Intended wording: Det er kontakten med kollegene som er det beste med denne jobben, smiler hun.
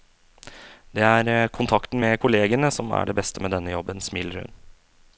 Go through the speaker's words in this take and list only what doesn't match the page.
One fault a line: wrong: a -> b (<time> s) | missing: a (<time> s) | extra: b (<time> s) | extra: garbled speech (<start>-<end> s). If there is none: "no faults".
no faults